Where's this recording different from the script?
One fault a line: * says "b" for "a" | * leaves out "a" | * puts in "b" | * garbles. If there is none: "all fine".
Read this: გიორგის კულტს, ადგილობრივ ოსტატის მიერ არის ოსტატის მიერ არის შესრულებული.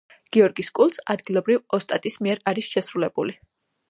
* leaves out "ოსტატის მიერ არის"